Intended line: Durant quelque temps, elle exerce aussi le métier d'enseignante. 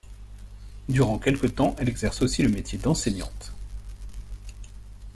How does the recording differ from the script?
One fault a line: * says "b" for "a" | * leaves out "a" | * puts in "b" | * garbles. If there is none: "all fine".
all fine